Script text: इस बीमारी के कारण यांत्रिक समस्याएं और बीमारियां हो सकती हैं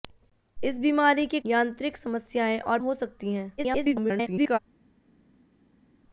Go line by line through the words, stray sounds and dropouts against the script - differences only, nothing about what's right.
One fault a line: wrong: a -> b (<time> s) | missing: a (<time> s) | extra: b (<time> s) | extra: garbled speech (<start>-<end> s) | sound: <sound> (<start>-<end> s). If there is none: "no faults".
missing: कारण (1.4 s)
missing: बीमारियां (2.8 s)
extra: garbled speech (3.6-4.6 s)